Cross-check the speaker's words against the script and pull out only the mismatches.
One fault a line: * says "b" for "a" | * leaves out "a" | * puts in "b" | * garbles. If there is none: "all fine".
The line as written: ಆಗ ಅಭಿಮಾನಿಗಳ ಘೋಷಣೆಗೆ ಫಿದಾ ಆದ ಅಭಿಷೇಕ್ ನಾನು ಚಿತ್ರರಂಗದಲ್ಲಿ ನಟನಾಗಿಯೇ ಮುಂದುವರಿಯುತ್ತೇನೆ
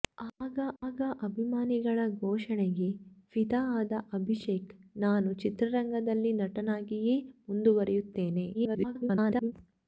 * puts in "ಆಗ"
* garbles